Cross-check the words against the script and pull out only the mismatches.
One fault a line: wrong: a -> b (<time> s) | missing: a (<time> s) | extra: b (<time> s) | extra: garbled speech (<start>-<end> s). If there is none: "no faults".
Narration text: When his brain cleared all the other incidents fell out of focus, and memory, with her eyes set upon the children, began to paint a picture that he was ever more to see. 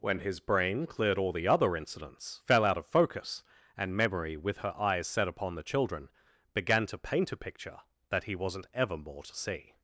wrong: was -> wasn't (8.3 s)